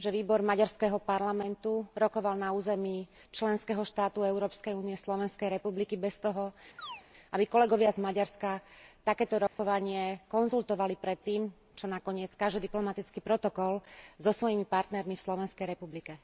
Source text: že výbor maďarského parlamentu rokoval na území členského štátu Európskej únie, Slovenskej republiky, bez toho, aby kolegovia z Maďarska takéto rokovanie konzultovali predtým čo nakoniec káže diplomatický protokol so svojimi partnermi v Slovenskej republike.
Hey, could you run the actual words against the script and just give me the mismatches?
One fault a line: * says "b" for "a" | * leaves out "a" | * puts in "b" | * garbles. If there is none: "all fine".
all fine